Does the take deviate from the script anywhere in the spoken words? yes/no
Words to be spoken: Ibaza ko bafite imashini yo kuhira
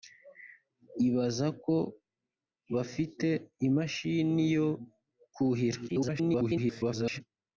yes